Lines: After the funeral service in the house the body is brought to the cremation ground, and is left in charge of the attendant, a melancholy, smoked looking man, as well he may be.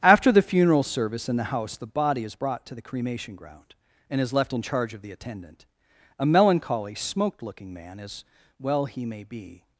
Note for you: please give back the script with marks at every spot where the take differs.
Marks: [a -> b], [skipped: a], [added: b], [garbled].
After the funeral service in the house the body is brought to the cremation ground, and is left in charge of the attendant, a melancholy, smoked looking man, as well he may be.